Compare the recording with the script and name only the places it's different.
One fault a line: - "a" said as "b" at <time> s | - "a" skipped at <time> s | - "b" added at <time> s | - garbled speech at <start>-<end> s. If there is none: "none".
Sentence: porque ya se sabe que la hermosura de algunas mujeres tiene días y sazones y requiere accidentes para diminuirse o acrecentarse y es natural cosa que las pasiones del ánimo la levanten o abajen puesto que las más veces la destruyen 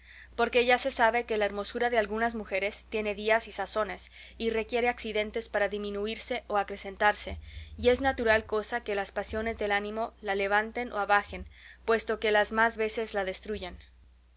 none